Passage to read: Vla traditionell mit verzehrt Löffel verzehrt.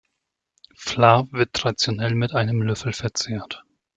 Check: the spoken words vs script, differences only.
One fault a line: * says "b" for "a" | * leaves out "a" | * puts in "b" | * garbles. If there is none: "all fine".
* puts in "wird"
* says "einem" for "verzehrt"